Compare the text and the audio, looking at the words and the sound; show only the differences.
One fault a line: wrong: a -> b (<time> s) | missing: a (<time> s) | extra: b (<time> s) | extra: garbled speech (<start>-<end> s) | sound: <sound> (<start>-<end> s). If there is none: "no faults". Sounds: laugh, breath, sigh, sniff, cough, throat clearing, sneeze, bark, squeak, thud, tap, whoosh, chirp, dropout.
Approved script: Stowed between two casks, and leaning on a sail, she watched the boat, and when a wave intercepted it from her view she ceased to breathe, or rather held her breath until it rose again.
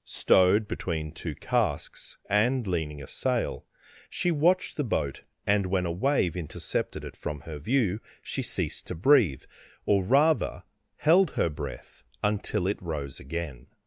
missing: on (3.0 s)